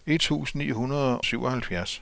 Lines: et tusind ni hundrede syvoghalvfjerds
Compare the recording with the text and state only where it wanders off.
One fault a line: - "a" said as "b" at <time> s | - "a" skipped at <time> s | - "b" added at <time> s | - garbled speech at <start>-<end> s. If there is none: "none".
none